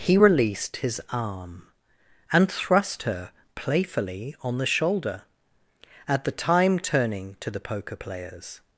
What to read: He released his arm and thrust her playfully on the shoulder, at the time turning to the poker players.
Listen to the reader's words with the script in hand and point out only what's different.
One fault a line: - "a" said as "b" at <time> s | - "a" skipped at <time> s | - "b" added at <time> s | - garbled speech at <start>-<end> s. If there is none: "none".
none